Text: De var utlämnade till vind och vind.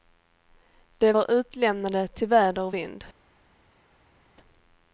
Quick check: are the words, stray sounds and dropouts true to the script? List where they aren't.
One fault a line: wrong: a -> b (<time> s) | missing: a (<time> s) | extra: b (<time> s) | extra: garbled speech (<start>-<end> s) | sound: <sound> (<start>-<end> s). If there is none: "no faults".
wrong: vind -> väder (2.3 s)